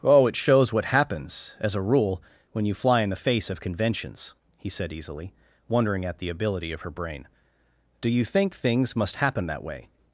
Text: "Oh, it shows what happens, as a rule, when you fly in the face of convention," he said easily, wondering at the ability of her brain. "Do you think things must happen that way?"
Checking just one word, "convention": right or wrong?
wrong